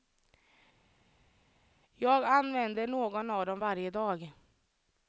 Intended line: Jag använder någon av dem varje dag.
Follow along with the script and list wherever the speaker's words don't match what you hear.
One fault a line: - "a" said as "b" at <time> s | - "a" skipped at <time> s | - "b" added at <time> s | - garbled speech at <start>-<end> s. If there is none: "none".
none